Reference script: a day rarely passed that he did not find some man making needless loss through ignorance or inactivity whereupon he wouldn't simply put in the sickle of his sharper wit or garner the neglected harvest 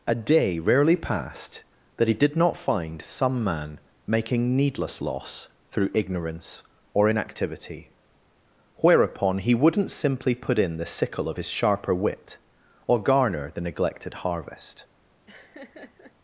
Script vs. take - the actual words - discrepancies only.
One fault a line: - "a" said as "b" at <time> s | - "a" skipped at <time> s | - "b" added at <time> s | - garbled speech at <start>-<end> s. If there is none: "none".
none